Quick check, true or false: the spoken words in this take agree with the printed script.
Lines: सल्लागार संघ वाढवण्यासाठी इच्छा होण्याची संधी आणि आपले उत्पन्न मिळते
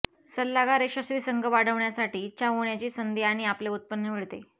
false